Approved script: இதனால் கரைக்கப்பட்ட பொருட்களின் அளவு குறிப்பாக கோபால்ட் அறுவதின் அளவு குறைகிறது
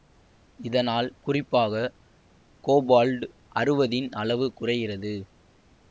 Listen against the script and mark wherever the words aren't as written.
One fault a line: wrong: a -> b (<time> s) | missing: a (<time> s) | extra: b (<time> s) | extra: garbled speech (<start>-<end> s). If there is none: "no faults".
missing: கரைக்கப்பட்ட பொருட்களின் அளவு (1.1 s)